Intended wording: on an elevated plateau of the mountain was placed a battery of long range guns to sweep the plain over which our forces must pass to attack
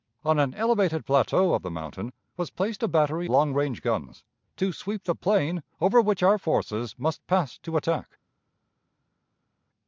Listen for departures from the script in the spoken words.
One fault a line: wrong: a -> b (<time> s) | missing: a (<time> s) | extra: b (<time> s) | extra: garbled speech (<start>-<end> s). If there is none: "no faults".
missing: of (3.3 s)